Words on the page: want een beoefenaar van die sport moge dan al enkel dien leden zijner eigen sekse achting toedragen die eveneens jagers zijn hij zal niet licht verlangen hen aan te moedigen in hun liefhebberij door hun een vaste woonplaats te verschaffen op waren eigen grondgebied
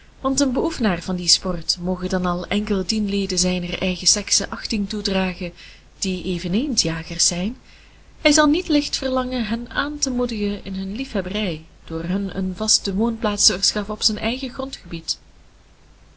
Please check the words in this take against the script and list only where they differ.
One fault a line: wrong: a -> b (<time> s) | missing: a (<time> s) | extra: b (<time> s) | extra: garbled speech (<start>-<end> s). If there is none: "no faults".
wrong: waren -> zijn (14.0 s)